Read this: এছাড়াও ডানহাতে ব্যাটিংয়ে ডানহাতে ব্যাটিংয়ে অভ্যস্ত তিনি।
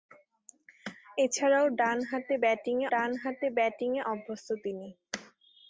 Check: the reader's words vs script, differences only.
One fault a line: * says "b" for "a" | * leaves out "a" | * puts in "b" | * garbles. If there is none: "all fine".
all fine